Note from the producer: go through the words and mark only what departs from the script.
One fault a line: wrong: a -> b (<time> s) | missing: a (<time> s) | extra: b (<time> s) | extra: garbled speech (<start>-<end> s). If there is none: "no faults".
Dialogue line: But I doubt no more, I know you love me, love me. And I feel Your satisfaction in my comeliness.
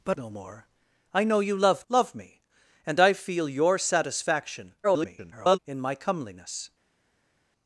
missing: I doubt (0.2 s)
missing: me (1.9 s)
extra: garbled speech (4.8-5.6 s)